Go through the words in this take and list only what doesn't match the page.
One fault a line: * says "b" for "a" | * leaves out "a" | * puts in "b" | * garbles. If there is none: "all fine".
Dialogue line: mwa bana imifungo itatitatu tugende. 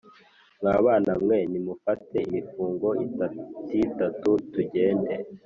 * puts in "mwe nimufate"